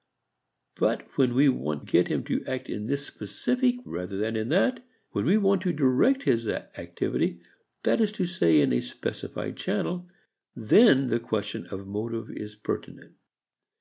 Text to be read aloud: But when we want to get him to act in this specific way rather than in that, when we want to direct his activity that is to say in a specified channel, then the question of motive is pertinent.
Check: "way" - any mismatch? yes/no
yes